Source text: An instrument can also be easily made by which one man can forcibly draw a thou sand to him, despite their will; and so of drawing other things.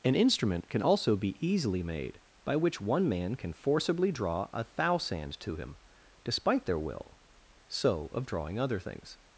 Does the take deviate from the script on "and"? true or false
true